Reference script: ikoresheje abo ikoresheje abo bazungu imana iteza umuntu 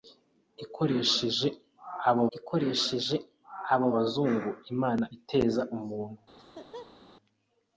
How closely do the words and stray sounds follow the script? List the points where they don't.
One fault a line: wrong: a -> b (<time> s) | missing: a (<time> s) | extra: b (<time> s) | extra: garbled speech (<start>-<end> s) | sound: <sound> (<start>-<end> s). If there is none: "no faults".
sound: laugh (6.4-7.0 s)